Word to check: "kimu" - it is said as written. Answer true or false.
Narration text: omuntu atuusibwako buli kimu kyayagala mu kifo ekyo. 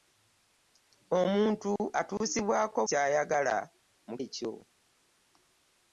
false